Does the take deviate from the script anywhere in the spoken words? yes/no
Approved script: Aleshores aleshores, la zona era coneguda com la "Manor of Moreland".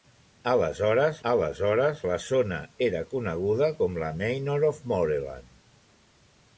no